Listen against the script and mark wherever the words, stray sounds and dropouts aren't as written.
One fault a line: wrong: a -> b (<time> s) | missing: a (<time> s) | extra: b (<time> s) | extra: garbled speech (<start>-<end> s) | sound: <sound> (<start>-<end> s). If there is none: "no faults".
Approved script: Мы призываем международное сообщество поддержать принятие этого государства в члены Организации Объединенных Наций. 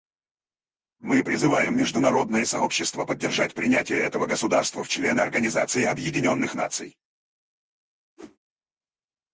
sound: whoosh (8.2-8.4 s)